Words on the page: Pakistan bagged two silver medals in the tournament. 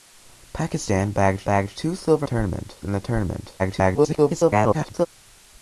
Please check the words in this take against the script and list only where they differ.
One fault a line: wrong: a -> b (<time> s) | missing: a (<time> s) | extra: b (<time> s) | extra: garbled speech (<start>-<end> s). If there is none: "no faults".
extra: bagged (1.4 s)
wrong: medals -> tournament (2.2 s)
extra: garbled speech (3.6-5.1 s)